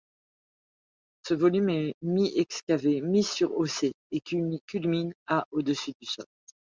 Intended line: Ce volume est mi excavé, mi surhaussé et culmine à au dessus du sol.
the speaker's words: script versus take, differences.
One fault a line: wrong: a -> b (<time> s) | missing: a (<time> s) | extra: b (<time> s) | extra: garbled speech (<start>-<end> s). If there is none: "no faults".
no faults